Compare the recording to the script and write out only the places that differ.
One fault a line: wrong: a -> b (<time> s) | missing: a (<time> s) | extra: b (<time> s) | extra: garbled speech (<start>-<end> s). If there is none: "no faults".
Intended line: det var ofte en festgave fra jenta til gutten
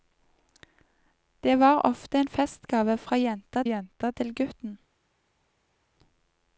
extra: jenta (3.6 s)